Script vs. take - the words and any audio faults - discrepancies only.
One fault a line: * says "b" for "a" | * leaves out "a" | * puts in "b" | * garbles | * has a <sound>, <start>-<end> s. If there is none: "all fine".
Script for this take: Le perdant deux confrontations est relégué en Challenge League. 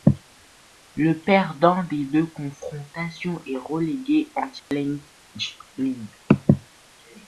* puts in "des"
* has a dropout, 4.6-4.7 s